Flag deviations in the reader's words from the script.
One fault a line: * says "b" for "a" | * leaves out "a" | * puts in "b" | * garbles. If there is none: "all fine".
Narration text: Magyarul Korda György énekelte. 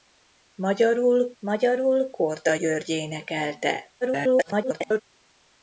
* puts in "magyarul"
* garbles